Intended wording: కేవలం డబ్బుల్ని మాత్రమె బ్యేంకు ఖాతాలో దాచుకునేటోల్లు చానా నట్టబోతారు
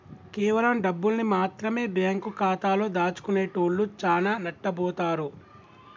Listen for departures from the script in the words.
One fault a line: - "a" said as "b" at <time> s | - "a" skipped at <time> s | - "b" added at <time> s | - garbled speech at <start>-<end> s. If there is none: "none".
none